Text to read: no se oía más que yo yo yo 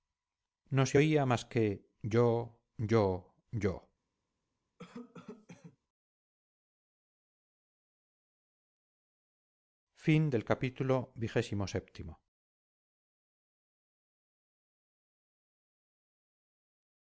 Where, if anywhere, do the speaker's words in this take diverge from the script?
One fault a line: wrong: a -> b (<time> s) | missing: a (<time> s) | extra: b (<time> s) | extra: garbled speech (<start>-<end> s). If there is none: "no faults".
no faults